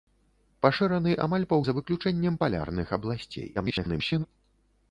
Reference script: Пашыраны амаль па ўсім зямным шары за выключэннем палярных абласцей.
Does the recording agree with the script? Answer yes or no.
no